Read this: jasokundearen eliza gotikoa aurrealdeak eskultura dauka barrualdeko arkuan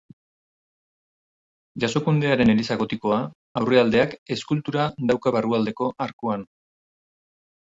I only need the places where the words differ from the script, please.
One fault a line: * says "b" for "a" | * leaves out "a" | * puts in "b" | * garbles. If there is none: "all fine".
all fine